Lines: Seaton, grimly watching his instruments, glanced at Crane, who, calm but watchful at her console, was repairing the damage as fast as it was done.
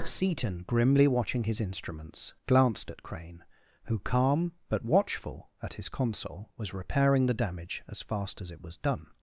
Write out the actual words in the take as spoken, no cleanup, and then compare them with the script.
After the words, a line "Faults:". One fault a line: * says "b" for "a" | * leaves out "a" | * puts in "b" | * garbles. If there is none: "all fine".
Seaton, grimly watching his instruments, glanced at Crane, who, calm but watchful at his console, was repairing the damage as fast as it was done.
Faults:
* says "his" for "her"